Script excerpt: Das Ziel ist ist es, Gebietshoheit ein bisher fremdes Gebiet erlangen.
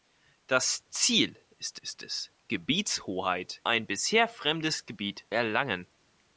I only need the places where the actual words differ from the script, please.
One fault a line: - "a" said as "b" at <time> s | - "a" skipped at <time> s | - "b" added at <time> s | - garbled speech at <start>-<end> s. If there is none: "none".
none